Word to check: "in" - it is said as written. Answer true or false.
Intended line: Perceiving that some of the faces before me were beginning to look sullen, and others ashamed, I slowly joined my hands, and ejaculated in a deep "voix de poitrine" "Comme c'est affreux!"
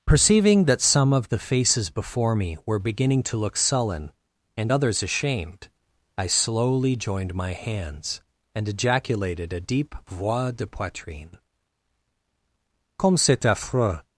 false